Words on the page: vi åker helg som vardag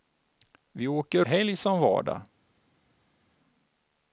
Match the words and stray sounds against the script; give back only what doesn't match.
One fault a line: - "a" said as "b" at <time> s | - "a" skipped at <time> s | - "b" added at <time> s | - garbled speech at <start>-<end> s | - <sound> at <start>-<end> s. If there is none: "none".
none